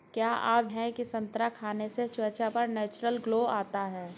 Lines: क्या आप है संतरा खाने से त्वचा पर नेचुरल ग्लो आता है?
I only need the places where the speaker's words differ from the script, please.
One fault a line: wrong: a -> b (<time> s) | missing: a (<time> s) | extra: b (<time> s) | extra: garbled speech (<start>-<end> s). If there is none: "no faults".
no faults